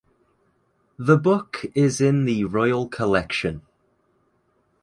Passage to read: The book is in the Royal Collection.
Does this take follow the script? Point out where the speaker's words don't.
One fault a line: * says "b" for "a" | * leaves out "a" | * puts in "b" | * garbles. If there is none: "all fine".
all fine